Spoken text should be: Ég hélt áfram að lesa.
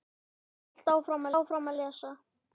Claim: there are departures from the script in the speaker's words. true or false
true